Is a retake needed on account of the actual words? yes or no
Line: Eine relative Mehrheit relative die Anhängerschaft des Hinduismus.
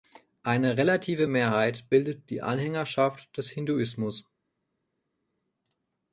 yes